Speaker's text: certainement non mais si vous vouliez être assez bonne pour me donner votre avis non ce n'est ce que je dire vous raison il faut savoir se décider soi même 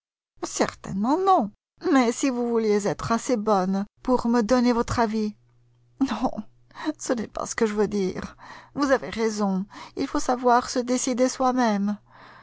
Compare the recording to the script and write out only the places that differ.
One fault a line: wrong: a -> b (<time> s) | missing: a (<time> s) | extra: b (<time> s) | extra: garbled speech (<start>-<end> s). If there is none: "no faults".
extra: pas (7.3 s)
extra: veux (7.8 s)
extra: avez (8.9 s)